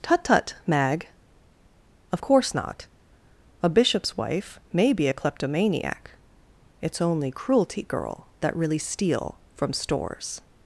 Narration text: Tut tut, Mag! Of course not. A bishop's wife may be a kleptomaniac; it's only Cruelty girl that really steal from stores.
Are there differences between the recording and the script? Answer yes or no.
no